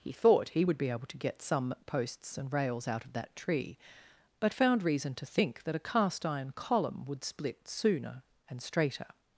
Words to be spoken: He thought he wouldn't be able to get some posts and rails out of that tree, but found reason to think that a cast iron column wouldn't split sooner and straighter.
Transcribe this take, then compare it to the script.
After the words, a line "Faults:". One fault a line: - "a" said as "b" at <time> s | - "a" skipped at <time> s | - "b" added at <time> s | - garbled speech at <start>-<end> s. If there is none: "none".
He thought he would be able to get some posts and rails out of that tree, but found reason to think that a cast iron column would split sooner and straighter.
Faults:
- "wouldn't" said as "would" at 0.6 s
- "wouldn't" said as "would" at 7.0 s